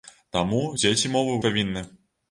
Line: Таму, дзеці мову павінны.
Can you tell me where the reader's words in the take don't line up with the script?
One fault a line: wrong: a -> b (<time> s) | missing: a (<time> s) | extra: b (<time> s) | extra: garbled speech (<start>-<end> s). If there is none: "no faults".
no faults